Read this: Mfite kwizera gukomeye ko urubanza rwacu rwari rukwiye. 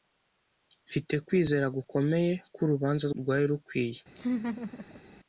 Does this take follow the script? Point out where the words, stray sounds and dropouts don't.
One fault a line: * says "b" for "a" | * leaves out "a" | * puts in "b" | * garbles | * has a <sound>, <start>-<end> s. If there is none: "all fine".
* leaves out "rwacu"
* has a laugh, 4.2-5.0 s